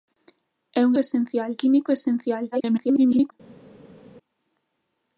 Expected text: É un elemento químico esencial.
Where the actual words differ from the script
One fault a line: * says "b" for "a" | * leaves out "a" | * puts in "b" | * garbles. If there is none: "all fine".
* says "esencial" for "elemento"
* garbles